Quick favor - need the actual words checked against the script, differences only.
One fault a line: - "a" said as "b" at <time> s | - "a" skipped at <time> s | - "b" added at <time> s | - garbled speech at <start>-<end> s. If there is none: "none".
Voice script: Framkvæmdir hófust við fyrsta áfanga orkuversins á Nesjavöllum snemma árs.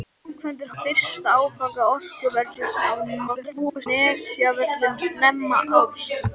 - "hófust við" skipped at 0.7 s
- garbled speech at 3.3-3.9 s